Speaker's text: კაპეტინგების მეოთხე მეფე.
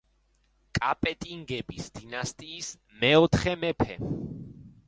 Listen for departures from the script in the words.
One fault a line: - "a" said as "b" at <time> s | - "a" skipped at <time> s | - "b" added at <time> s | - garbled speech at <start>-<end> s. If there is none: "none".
- "დინასტიის" added at 2.0 s